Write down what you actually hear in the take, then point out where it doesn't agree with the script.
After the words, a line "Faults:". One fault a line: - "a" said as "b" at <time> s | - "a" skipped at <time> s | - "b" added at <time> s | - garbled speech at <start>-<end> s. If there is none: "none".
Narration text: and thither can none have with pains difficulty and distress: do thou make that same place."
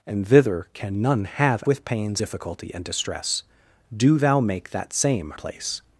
and thither can none have with pains difficulty and distress: do thou make that same place."
Faults:
none